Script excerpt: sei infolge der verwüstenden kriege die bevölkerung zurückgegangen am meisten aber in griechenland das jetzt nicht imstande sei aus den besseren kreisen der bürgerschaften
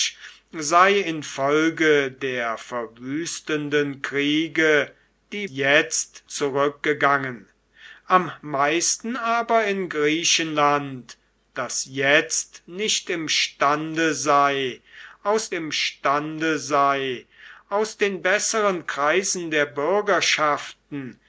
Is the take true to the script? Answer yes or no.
no